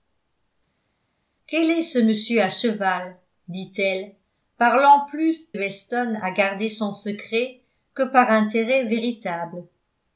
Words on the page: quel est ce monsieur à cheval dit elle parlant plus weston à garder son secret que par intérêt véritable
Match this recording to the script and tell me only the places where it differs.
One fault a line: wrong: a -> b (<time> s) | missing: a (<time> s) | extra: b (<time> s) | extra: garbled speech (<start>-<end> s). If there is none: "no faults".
no faults